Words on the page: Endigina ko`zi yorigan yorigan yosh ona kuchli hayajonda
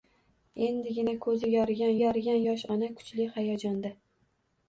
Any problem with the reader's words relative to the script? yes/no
no